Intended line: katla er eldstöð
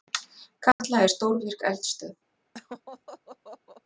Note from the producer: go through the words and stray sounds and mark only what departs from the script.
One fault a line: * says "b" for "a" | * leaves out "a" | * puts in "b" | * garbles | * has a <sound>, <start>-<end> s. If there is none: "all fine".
* has a dropout, 0.7-0.8 s
* puts in "stórvirk"
* has a laugh, 2.5-3.8 s